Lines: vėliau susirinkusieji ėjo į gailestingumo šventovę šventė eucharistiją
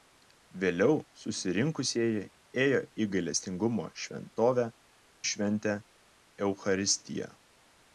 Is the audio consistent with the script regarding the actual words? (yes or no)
yes